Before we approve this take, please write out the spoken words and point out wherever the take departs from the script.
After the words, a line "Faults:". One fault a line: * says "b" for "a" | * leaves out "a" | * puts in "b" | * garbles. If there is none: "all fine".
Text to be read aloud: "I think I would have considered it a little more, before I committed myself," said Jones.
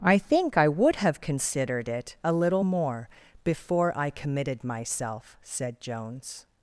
"I think I would have considered it a little more, before I committed myself," said Jones.
Faults:
all fine